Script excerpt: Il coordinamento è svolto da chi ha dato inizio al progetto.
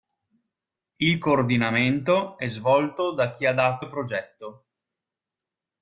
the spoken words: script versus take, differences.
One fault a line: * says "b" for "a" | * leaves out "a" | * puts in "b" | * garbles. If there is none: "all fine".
* leaves out "inizio"